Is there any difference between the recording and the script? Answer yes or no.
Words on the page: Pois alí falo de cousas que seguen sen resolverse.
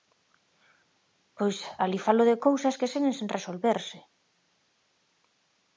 no